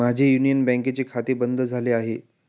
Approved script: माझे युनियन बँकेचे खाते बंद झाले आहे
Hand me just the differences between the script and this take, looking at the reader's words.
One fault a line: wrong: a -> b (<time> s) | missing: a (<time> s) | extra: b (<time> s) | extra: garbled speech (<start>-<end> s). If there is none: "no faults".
no faults